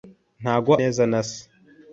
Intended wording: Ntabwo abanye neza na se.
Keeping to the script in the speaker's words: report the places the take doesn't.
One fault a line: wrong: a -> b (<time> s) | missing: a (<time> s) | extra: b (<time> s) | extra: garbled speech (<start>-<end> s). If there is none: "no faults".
missing: abanye (0.7 s)